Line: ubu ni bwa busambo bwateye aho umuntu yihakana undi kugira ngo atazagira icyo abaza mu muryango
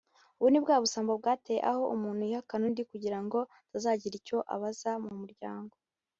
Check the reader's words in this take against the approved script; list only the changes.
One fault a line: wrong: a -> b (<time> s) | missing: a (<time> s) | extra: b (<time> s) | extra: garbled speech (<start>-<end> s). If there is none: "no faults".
no faults